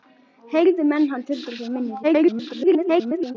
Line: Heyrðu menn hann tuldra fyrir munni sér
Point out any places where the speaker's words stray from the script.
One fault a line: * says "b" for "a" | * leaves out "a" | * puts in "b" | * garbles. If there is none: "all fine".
* garbles